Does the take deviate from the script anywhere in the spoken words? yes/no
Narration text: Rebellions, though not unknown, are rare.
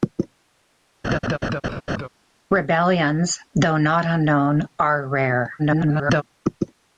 yes